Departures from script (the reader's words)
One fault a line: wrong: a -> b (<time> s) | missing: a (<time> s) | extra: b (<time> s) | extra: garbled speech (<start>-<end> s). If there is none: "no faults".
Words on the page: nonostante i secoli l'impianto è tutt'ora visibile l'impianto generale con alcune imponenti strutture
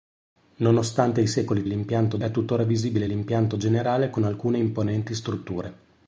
no faults